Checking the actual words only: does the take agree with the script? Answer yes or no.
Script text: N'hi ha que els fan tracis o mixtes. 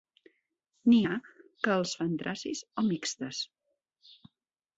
yes